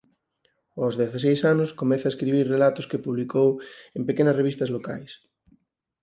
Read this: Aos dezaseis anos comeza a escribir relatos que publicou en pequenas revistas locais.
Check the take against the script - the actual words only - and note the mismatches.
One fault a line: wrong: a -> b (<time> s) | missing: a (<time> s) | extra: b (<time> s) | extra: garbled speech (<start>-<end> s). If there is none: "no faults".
no faults